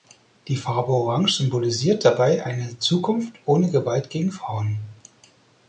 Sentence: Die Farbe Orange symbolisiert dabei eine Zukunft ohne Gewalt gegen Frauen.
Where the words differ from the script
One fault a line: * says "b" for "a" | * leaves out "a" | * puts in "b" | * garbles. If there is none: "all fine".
all fine